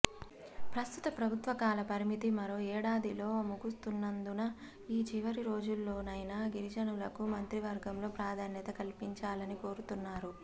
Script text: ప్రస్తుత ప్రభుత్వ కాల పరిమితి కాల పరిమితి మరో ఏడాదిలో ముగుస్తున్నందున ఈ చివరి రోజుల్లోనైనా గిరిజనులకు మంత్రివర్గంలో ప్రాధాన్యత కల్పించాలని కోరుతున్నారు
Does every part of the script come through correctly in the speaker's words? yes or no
no